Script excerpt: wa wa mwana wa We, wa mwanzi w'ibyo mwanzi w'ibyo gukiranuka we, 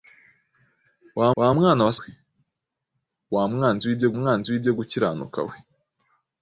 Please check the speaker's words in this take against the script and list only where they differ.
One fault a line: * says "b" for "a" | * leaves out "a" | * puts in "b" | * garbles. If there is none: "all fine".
all fine